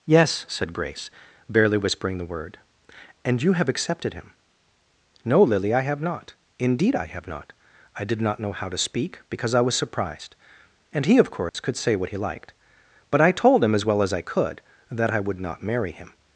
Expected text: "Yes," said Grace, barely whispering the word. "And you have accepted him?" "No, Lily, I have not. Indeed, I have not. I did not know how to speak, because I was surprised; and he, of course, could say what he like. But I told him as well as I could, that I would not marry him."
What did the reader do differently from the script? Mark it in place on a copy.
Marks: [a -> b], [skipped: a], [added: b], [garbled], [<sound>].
"Yes," said Grace, barely whispering the word. "And you have accepted him?" "No, Lily, I have not. Indeed, I have not. I did not know how to speak, because I was surprised; and he, of course, [dropout] could say what he [like. -> liked] But I told him as well as I could, that I would not marry him."